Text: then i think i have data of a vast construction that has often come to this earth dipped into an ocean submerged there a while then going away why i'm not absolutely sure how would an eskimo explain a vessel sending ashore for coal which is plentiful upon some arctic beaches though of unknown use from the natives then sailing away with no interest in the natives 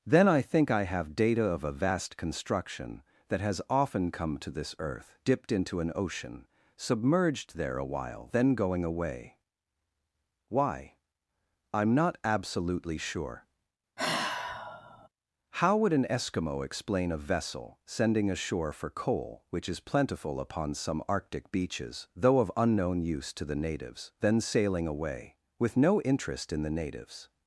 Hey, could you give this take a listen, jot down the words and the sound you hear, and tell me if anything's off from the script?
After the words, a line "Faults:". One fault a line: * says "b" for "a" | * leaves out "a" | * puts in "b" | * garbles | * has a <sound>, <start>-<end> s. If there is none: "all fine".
then i think i have data of a vast construction that has often come to this earth dipped into an ocean submerged there a while then going away why i'm not absolutely sure how would an eskimo explain a vessel sending ashore for coal which is plentiful upon some arctic beaches though of unknown use to the natives then sailing away with no interest in the natives
Faults:
* has a sigh, 14.0-15.1 s
* says "to" for "from"